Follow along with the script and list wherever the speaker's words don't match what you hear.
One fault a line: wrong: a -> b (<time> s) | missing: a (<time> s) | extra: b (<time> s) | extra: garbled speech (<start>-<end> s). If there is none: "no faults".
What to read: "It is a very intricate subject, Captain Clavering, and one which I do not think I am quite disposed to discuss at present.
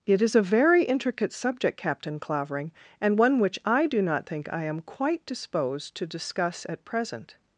no faults